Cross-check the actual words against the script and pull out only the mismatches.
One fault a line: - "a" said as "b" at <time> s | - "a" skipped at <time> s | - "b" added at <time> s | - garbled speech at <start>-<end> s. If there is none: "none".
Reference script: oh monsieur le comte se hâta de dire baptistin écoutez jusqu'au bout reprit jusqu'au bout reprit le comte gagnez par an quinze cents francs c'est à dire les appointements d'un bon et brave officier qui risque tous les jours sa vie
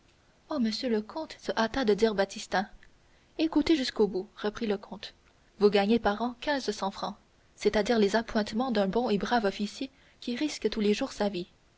- "jusqu'au bout reprit" skipped at 4.7 s
- "vous" added at 5.6 s